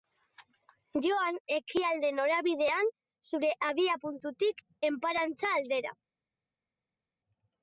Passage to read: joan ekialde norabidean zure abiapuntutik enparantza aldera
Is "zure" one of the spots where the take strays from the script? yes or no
no